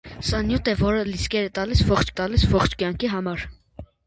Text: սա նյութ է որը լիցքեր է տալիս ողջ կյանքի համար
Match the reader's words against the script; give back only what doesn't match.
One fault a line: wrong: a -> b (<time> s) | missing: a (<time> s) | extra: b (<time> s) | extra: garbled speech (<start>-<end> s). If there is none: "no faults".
extra: տալիս ողջ (2.2 s)